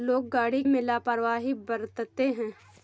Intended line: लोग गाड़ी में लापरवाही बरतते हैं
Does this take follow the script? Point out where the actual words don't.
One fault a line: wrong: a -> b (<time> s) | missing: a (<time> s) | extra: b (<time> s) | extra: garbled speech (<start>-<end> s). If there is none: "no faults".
no faults